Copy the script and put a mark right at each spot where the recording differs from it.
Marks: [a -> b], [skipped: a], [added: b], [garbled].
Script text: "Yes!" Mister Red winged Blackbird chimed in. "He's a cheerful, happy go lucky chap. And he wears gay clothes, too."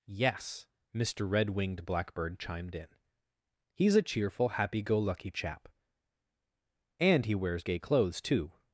"Yes!" Mister Red winged Blackbird chimed in. "He's a cheerful, happy go lucky chap. And he wears gay clothes, too."